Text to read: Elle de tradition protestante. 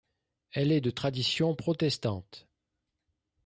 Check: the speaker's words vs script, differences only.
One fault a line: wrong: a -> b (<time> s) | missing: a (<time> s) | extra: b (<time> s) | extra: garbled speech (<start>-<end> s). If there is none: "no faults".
extra: est (0.7 s)